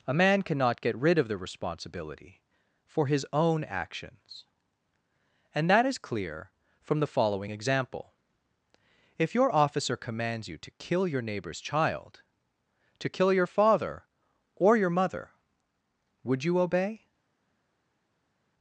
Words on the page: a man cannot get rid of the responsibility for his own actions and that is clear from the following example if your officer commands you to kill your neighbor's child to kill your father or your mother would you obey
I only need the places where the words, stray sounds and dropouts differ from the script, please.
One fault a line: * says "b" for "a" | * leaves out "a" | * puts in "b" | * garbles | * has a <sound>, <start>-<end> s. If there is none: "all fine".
all fine